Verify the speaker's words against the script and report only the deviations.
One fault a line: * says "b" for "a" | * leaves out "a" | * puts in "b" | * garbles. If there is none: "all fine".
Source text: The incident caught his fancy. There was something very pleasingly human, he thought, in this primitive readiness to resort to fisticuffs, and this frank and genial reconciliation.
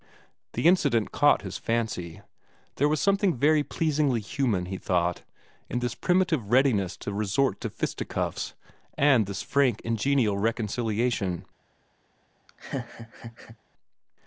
all fine